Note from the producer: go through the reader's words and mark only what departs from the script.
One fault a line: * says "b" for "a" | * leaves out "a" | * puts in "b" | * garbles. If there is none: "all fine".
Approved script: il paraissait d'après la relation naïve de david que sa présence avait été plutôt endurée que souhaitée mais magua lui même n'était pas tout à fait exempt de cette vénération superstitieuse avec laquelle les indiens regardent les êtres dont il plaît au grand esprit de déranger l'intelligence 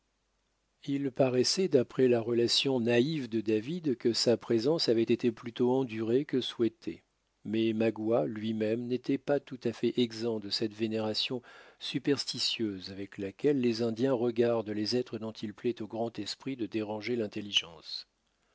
all fine